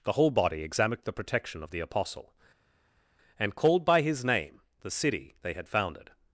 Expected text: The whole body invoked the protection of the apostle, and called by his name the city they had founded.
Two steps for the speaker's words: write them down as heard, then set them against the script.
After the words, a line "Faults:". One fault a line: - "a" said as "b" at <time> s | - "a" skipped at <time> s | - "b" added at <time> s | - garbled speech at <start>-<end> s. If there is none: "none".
The whole body examined the protection of the apostle, and called by his name the city they had founded.
Faults:
- "invoked" said as "examined" at 0.6 s